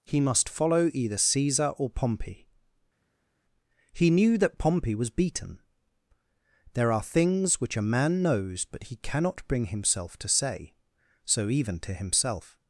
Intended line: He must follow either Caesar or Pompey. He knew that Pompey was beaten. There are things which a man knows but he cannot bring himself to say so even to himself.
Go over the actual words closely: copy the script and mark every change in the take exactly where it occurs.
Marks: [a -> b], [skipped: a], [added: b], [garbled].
He must follow either Caesar or Pompey. He knew that Pompey was beaten. There are things which a man knows but he cannot bring himself to say so even to himself.